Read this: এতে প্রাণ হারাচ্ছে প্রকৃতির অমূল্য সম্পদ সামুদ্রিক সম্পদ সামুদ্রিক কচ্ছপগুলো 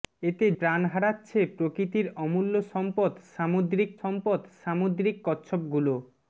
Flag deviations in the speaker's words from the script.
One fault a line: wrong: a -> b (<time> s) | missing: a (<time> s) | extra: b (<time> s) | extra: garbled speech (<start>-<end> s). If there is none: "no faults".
no faults